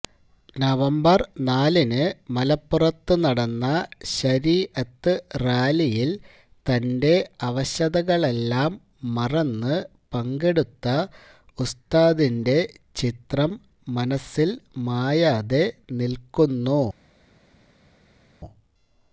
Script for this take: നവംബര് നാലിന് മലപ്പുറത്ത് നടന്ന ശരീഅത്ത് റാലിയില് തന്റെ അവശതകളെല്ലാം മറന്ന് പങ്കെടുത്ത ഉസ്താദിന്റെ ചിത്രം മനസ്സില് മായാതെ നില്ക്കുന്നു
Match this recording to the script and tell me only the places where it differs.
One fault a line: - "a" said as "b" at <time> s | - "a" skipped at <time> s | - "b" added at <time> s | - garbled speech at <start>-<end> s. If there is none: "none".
none